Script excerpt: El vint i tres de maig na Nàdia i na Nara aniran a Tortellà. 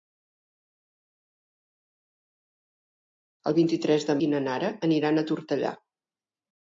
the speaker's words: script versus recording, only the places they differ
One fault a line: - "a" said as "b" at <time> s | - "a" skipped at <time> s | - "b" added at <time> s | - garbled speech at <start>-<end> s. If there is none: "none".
- "maig na Nàdia" skipped at 4.2 s